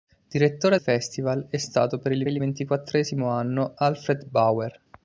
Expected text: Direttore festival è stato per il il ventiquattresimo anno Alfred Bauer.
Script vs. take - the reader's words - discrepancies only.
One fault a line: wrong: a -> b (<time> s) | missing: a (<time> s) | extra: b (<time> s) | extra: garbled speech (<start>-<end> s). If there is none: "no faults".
no faults